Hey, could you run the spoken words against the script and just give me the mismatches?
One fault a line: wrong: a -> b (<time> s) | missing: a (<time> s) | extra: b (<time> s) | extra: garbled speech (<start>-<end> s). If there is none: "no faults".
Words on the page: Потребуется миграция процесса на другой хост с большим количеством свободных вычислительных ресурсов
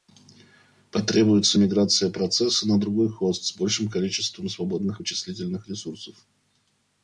no faults